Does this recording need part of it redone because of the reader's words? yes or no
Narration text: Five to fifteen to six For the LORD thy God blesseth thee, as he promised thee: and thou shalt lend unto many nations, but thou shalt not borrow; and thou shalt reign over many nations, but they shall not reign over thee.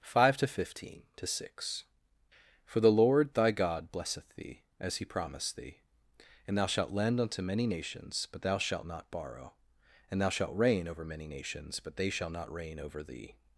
no